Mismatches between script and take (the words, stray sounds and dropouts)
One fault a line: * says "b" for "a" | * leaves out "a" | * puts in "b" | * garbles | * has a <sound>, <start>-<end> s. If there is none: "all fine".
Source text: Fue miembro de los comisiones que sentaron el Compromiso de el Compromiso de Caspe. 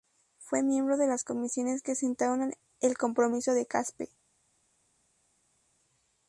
* says "las" for "los"
* leaves out "el Compromiso de"